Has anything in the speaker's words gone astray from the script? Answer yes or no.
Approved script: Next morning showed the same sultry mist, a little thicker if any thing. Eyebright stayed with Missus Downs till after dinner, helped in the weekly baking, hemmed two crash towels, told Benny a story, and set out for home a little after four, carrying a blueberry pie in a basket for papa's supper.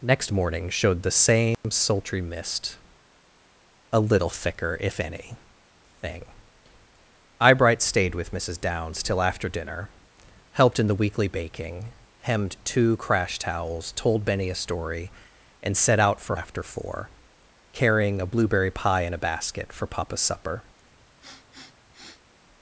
yes